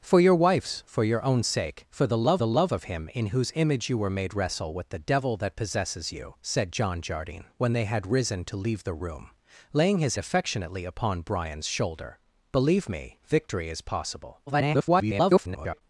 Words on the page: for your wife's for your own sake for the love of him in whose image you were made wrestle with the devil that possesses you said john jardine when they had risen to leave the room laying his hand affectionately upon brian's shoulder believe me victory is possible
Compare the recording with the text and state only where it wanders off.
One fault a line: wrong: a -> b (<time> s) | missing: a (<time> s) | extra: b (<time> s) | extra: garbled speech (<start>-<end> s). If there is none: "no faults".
extra: the love (2.4 s)
missing: hand (10.2 s)
extra: garbled speech (14.5-15.8 s)